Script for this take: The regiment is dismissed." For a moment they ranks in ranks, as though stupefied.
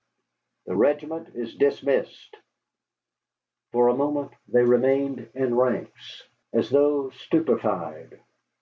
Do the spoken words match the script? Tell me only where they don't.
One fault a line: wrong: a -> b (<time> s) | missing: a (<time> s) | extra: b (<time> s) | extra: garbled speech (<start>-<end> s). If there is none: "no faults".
wrong: ranks -> remained (4.6 s)